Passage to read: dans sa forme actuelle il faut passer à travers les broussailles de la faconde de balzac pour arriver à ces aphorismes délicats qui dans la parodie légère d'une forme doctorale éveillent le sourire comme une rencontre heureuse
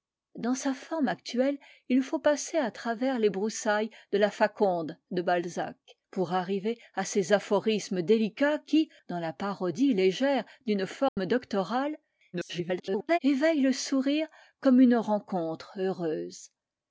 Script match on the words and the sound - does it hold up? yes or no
no